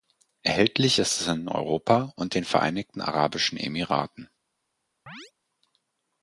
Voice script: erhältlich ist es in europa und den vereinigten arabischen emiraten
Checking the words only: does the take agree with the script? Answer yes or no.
yes